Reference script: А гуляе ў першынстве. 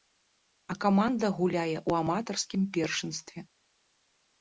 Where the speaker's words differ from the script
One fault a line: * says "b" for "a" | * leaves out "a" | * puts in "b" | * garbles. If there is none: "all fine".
* puts in "каманда"
* puts in "аматарскім"